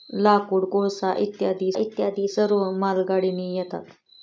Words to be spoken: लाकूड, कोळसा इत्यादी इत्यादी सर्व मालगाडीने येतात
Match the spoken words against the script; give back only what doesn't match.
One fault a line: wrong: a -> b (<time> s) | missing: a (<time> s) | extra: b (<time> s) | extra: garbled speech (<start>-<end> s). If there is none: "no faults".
no faults